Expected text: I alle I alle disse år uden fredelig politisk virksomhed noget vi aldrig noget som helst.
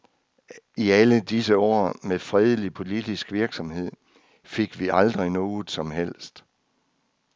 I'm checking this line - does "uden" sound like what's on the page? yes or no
no